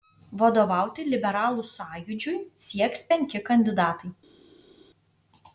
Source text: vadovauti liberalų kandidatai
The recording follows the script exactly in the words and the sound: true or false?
false